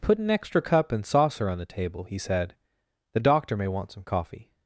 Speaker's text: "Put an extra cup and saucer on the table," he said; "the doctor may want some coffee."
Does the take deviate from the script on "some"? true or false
false